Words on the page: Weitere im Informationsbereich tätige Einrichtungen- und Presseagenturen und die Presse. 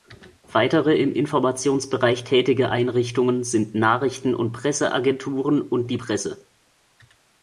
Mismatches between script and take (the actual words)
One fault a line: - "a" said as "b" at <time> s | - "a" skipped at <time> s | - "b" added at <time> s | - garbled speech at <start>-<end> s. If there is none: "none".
- "sind Nachrichten" added at 3.4 s